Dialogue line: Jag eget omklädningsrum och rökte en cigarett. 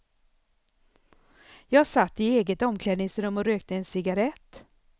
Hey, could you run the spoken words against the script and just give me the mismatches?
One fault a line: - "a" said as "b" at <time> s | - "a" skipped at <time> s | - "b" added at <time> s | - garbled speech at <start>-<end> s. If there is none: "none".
- "satt i" added at 1.9 s